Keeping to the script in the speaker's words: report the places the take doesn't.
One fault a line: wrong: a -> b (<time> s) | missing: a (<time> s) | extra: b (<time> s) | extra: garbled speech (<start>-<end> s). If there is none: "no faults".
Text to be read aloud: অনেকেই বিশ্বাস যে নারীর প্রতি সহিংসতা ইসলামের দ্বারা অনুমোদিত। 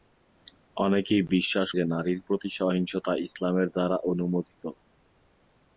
no faults